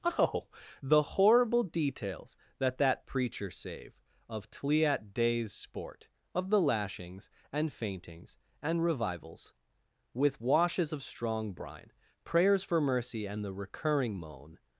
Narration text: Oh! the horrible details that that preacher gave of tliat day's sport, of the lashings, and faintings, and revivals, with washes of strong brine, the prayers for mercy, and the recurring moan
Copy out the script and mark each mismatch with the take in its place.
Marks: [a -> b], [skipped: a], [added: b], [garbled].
Oh! the horrible details that that preacher [gave -> save] of tliat day's sport, of the lashings, and faintings, and revivals, with washes of strong brine, [skipped: the] prayers for mercy, and the recurring moan